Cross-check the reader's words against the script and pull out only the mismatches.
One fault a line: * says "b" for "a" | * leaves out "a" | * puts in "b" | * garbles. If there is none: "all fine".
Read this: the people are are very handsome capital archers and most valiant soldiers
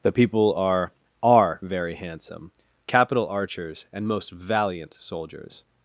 all fine